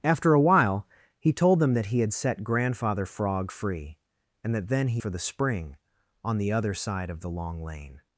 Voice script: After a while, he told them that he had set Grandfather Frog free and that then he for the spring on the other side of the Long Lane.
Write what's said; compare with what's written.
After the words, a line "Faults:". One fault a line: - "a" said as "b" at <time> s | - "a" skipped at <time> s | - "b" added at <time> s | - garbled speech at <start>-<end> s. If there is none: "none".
After a while, he told them that he had set Grandfather Frog free and that then he for the spring on the other side of the Long Lane.
Faults:
none